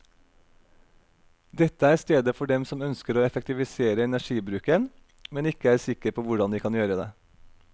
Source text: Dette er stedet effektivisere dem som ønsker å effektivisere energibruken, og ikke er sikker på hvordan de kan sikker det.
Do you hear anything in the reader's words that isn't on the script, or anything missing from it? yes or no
yes